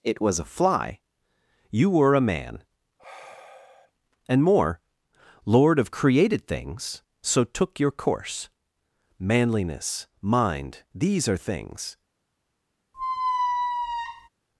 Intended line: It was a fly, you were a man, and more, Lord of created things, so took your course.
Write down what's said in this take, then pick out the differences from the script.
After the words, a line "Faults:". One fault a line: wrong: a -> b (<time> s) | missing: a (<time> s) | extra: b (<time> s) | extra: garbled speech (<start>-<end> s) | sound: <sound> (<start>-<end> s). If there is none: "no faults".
It was a fly, you were a man, and more, Lord of created things, so took your course. Manliness, mind, these are things
Faults:
sound: sigh (3.0-3.9 s)
extra: Manliness mind these are things (9.2 s)
sound: squeak (12.9-14.3 s)